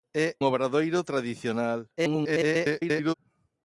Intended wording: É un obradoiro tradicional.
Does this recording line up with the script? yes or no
no